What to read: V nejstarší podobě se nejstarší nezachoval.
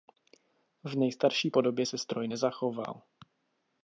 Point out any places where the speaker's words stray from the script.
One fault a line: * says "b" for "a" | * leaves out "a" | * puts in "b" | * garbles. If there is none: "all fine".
* says "stroj" for "nejstarší"